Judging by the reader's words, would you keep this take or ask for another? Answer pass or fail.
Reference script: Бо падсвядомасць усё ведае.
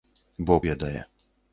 fail